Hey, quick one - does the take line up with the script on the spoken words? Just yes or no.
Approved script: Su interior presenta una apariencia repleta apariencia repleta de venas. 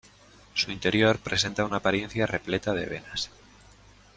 no